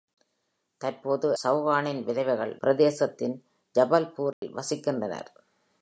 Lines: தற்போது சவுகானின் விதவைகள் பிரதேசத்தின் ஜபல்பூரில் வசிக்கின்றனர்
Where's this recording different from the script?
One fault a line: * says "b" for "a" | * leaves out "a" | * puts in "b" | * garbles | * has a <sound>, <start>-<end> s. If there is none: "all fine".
* has a dropout, 4.3-4.4 s